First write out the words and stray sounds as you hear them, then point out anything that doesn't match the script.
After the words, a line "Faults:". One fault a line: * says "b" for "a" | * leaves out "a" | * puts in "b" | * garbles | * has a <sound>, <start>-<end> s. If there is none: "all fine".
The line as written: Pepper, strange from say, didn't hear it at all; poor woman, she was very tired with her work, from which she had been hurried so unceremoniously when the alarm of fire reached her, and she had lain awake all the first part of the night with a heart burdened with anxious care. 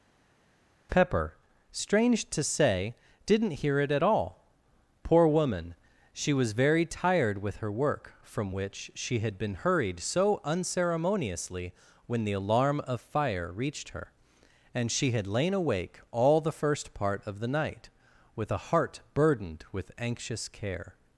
Pepper, strange to say, didn't hear it at all; poor woman, she was very tired with her work, from which she had been hurried so unceremoniously when the alarm of fire reached her, and she had lain awake all the first part of the night with a heart burdened with anxious care.
Faults:
* says "to" for "from"